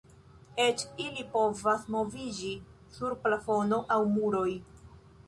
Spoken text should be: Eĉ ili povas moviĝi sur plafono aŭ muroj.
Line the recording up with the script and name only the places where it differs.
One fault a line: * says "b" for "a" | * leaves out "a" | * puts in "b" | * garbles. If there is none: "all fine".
all fine